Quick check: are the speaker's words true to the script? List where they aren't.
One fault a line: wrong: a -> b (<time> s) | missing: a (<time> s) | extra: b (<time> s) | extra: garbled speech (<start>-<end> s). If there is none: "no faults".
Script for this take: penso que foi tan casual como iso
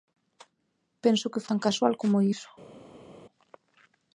missing: foi (1.4 s)